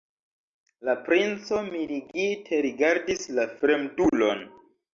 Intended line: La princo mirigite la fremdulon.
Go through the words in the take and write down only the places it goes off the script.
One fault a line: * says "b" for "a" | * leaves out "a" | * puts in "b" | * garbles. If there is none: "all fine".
* puts in "rigardis"